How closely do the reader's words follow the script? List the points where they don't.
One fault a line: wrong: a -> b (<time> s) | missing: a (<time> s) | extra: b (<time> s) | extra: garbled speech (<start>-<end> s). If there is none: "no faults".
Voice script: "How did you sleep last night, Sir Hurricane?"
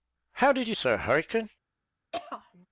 missing: sleep last night (0.8 s)